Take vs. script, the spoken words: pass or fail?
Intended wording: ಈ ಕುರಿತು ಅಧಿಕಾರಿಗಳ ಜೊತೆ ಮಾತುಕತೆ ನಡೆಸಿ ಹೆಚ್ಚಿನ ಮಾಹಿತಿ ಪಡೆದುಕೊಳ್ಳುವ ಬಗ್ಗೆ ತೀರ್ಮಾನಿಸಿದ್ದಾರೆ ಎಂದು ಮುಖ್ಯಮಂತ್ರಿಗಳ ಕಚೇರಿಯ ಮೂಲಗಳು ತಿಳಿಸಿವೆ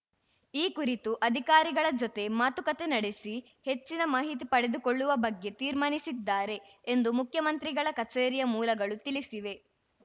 pass